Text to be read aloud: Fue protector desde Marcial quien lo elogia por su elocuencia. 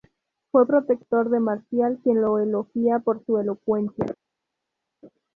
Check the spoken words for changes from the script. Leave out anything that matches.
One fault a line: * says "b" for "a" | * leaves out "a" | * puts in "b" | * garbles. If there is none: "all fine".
* says "de" for "desde"